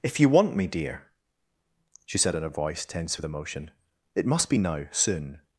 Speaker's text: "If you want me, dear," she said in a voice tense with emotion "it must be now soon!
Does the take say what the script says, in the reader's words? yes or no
yes